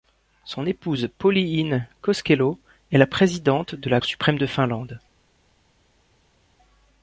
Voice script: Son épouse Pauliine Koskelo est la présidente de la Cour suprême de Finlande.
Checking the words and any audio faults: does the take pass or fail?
fail